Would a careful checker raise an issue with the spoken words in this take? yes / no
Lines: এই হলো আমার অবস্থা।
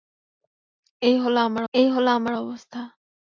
yes